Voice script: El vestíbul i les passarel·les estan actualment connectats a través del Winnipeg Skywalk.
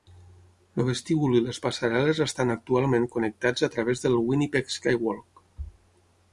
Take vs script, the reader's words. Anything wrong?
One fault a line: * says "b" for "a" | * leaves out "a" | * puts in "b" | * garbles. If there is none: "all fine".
all fine